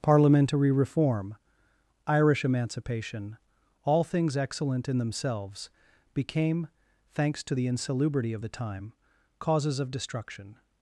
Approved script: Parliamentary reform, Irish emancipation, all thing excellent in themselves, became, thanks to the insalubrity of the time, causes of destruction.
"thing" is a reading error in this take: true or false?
true